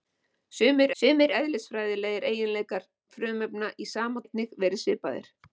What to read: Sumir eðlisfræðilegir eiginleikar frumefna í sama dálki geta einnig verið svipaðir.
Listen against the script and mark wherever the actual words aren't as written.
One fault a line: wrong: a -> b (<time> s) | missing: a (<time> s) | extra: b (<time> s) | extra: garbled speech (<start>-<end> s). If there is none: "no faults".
extra: sumir (1.0 s)
missing: dálki geta (4.2 s)